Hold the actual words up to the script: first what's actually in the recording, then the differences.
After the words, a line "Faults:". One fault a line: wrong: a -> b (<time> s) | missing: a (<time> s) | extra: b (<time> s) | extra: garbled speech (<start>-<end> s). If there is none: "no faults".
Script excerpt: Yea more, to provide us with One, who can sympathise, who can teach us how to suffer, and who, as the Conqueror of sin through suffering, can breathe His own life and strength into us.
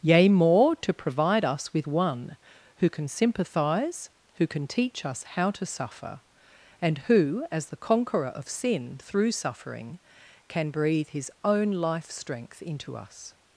Yea more, to provide us with One, who can sympathise, who can teach us how to suffer, and who, as the Conqueror of sin through suffering, can breathe His own life strength into us.
Faults:
missing: and (12.1 s)